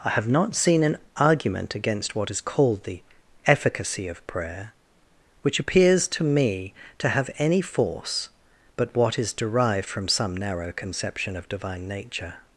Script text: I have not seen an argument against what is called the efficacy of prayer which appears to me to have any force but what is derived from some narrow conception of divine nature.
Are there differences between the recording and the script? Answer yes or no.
no